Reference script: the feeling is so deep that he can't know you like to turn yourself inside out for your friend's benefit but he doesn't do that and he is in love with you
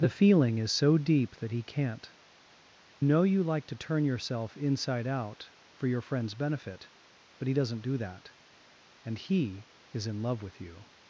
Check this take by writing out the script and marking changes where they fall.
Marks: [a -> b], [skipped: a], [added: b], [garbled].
the feeling is so deep that he can't know you like to turn yourself inside out for your friend's benefit but he doesn't do that and he is in love with you